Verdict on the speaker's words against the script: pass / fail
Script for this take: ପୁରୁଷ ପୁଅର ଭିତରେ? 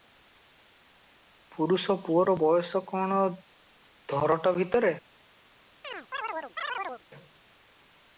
fail